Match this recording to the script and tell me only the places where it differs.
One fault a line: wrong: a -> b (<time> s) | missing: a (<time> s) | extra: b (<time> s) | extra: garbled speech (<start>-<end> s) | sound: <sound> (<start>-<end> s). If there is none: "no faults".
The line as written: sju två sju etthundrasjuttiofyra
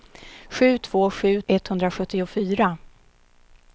no faults